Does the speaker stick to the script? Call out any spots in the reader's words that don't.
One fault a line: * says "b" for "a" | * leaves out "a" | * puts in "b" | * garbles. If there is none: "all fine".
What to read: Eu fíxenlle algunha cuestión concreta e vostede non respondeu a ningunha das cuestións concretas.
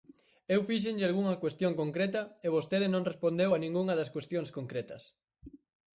all fine